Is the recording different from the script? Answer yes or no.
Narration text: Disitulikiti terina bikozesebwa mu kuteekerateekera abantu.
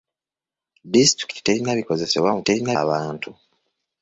yes